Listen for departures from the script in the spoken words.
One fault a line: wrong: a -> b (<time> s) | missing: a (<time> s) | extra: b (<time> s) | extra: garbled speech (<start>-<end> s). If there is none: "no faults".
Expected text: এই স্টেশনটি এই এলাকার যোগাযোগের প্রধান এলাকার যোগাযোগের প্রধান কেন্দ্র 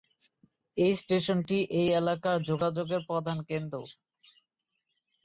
missing: এলাকার যোগাযোগের প্রধান (3.4 s)